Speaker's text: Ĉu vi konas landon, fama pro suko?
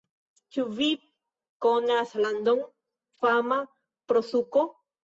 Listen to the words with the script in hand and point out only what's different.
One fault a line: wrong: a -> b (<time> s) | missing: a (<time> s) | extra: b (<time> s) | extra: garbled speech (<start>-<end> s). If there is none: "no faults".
no faults